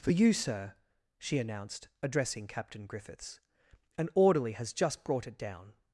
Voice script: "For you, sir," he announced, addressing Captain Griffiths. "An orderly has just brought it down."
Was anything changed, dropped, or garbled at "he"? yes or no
yes